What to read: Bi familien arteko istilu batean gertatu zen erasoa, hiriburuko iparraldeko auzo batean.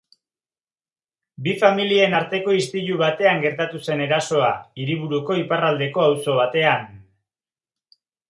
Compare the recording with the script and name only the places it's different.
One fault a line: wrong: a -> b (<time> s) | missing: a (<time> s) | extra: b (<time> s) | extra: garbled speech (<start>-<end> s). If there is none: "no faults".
no faults